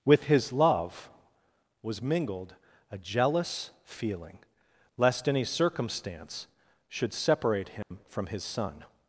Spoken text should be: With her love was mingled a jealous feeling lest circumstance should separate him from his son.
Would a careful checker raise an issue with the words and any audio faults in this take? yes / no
yes